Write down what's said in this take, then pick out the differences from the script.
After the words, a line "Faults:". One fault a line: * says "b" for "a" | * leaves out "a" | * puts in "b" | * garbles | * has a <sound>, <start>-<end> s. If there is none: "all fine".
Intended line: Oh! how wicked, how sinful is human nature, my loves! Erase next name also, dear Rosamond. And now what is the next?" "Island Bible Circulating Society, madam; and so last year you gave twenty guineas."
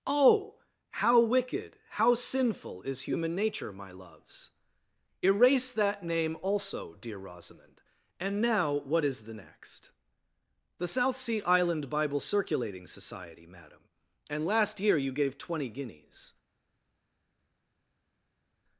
Oh! how wicked, how sinful is human nature, my loves! Erase that name also, dear Rosamond. And now what is the next?" "The South Sea Island Bible Circulating Society, madam; and last year you gave twenty guineas."
Faults:
* says "that" for "next"
* puts in "The South Sea"
* leaves out "so"